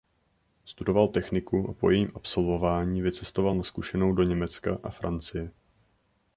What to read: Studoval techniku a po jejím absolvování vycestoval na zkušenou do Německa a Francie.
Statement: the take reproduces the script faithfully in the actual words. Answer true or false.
true